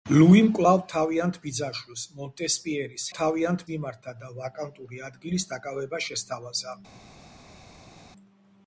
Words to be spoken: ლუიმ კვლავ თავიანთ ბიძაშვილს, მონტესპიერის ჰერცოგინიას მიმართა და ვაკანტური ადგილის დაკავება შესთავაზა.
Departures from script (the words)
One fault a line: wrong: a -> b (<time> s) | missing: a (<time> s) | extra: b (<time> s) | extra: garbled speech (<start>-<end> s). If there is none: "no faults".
wrong: ჰერცოგინიას -> თავიანთ (3.2 s)